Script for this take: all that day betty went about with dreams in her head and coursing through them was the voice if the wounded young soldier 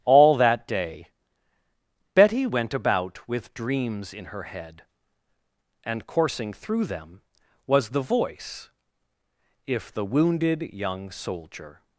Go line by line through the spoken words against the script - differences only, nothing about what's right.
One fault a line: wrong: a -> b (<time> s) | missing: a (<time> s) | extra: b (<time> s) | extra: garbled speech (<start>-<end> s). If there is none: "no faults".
no faults